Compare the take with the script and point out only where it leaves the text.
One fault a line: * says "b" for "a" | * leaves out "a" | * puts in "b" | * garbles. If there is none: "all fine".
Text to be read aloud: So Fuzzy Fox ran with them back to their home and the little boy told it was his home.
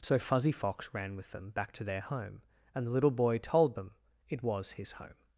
* puts in "them"